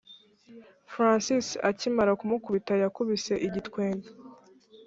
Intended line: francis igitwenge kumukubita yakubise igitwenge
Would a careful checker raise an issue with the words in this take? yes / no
yes